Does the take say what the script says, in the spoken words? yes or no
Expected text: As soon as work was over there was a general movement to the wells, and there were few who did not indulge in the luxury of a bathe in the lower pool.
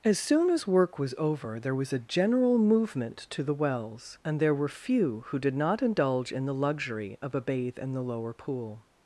yes